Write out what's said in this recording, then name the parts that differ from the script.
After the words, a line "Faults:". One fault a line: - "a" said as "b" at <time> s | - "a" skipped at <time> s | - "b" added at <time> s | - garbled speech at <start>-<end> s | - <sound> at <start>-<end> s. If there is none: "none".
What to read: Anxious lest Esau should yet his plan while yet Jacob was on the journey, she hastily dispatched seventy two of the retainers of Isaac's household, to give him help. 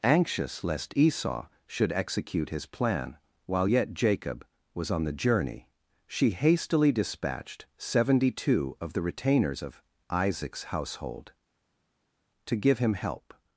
Anxious lest Esau should execute his plan while yet Jacob was on the journey, she hastily dispatched seventy two of the retainers of Isaac's household, to give him help.
Faults:
- "yet" said as "execute" at 1.9 s